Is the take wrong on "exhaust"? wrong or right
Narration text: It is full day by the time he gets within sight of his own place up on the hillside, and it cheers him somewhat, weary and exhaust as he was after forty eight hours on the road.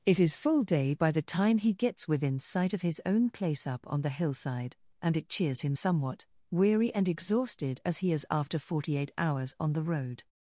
wrong